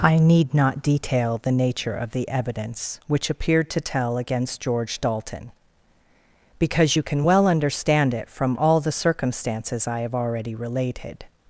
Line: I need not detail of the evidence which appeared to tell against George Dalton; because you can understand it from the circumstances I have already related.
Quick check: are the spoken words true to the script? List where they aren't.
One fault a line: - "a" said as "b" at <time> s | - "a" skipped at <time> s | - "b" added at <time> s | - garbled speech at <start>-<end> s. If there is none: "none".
- "the nature" added at 1.4 s
- "well" added at 7.2 s
- "all" added at 8.6 s